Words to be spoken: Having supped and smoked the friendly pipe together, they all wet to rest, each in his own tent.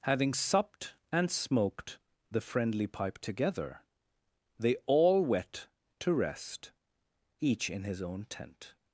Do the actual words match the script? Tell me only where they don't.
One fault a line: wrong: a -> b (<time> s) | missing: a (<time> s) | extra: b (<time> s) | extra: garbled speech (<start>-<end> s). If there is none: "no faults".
no faults